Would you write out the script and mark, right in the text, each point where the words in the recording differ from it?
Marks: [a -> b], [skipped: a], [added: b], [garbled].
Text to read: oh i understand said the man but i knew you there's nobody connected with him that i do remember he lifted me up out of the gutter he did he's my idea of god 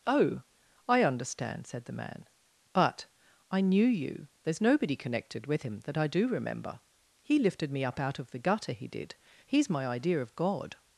oh i understand said the man but i knew you there's nobody connected with him that i do remember he lifted me up out of the gutter he did he's my idea of god